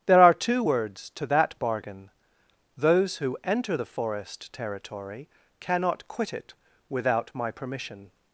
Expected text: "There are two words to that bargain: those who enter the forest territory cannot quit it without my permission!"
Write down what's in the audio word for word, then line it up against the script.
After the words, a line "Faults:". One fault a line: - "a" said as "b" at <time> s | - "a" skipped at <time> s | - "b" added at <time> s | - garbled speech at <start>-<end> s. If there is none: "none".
"There are two words to that bargain: those who enter the forest territory cannot quit it without my permission!"
Faults:
none